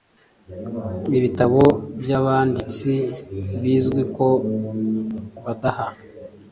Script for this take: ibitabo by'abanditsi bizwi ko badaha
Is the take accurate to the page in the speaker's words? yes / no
yes